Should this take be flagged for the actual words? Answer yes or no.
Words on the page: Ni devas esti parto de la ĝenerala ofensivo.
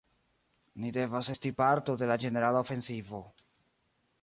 no